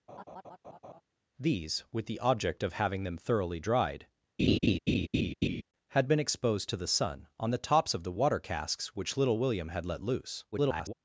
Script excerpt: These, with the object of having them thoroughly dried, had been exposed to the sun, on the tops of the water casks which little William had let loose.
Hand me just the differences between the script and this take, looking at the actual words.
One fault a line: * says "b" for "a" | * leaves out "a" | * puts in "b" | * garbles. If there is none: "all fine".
* garbles